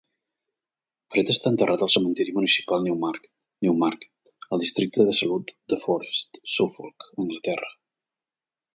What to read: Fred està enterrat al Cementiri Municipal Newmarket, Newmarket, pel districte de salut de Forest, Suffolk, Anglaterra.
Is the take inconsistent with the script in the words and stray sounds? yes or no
yes